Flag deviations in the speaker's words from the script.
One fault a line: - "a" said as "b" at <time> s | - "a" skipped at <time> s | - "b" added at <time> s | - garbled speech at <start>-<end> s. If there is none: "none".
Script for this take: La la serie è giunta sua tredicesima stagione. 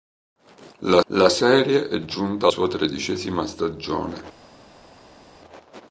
none